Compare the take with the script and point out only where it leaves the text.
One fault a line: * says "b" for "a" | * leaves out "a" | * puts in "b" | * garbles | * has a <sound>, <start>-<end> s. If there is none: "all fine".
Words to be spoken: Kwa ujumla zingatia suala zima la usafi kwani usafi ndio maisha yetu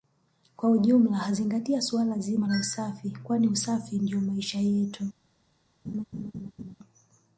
* has a laugh, 5.8-6.7 s